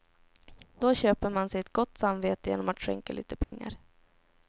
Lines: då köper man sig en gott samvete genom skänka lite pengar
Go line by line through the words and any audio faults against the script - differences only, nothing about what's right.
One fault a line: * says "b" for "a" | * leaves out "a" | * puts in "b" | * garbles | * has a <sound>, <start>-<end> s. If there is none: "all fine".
* says "ett" for "en"
* puts in "att"
* has a dropout, 3.4-3.5 s